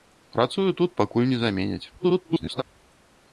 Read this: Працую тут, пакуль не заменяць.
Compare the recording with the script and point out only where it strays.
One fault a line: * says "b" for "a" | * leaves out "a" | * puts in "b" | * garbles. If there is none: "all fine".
* garbles